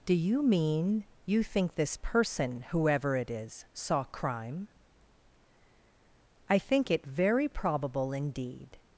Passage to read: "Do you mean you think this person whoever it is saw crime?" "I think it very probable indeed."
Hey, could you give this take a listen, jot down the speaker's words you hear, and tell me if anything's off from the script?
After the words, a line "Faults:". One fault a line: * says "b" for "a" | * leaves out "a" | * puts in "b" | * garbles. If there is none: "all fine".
"Do you mean you think this person whoever it is saw crime?" "I think it very probable indeed."
Faults:
all fine